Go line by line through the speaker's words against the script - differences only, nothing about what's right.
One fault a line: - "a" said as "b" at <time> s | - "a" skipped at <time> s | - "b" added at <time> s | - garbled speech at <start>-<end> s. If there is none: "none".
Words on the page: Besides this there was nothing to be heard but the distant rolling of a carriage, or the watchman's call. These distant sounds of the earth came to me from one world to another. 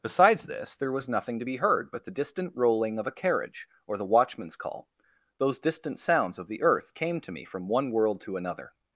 - "These" said as "Those" at 5.4 s